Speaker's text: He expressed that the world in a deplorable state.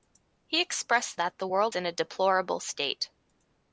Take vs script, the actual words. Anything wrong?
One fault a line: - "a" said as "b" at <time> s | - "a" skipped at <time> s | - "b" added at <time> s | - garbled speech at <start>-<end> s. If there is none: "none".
none